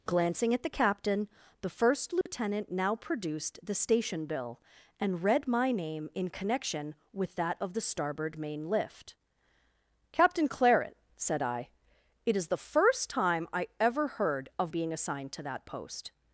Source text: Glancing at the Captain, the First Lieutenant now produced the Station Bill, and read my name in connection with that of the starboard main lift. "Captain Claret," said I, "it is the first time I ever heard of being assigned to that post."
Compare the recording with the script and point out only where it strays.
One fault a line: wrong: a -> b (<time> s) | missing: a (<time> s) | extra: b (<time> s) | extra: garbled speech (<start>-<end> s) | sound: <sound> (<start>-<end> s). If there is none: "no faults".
sound: dropout (2.2-2.3 s)